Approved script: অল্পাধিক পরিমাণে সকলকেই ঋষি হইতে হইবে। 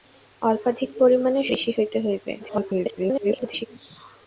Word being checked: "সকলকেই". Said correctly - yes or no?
no